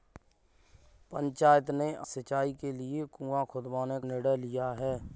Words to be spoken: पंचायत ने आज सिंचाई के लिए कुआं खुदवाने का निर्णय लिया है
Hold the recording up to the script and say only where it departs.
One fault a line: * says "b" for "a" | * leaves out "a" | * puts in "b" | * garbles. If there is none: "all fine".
* leaves out "आज"
* leaves out "का"